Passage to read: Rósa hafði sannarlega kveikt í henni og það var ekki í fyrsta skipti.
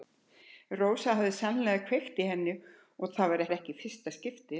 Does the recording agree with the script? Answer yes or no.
no